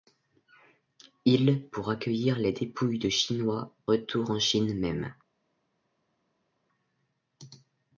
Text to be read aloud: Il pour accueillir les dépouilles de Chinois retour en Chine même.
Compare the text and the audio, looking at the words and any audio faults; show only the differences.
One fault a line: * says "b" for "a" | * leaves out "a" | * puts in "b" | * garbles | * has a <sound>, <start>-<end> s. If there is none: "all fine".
all fine